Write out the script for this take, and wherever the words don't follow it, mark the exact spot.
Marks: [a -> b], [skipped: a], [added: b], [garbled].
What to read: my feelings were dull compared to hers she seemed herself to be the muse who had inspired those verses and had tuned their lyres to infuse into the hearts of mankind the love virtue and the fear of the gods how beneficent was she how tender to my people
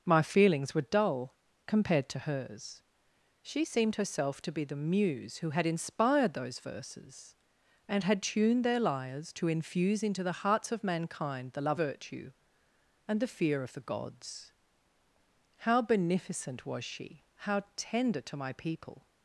my feelings were dull compared to hers she seemed herself to be the muse who had inspired those verses and had tuned their lyres to infuse into the hearts of mankind the love virtue and the fear of the gods how beneficent was she how tender to my people